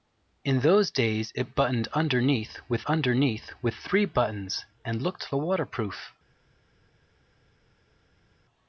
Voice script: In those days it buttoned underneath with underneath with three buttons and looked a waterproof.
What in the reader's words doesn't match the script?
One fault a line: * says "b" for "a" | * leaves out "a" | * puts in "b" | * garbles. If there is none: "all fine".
all fine